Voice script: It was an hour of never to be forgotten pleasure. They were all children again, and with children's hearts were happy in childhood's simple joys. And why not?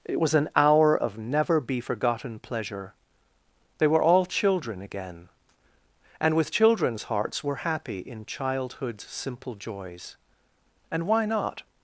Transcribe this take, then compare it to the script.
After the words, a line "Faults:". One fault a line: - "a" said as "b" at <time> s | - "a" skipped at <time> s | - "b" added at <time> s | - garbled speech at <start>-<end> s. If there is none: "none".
It was an hour of never be forgotten pleasure. They were all children again, and with children's hearts were happy in childhood's simple joys. And why not?
Faults:
- "to" skipped at 1.6 s